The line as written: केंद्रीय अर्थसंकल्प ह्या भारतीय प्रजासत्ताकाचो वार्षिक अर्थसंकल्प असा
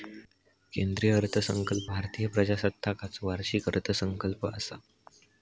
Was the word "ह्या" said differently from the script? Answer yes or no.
yes